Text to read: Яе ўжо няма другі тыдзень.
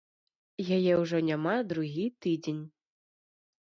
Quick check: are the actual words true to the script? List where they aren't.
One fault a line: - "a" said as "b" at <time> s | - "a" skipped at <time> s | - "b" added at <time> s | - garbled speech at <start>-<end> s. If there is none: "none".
none